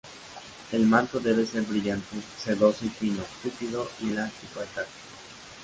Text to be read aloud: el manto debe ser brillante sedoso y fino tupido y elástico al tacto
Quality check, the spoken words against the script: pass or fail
pass